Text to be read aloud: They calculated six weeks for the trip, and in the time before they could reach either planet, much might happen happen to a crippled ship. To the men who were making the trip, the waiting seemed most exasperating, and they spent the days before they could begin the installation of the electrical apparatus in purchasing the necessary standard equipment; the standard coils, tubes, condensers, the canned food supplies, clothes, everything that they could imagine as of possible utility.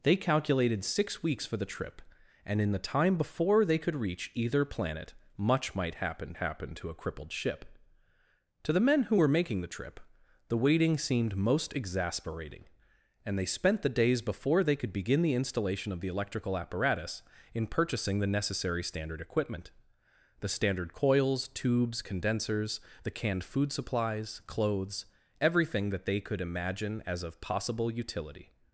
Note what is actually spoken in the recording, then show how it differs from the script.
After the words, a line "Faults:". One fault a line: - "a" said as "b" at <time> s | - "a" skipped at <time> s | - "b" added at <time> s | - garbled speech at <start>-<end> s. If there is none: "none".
They calculated six weeks for the trip, and in the time before they could reach either planet, much might happen happen to a crippled ship. To the men who were making the trip, the waiting seemed most exasperating, and they spent the days before they could begin the installation of the electrical apparatus in purchasing the necessary standard equipment; the standard coils, tubes, condensers, the canned food supplies, clothes, everything that they could imagine as of possible utility.
Faults:
none